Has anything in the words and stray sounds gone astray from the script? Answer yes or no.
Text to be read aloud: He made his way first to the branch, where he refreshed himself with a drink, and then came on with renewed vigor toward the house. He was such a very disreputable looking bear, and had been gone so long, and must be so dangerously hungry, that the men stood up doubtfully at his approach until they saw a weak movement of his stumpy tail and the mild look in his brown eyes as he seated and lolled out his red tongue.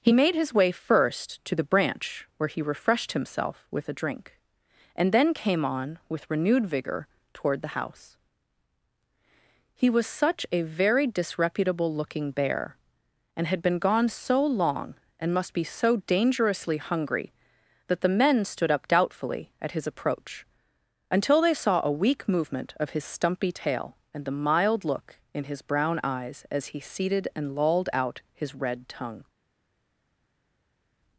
no